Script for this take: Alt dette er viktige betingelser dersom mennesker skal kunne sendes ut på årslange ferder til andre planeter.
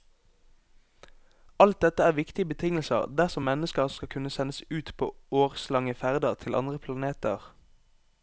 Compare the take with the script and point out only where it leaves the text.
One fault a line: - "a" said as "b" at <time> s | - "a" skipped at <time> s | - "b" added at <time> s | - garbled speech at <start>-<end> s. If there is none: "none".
none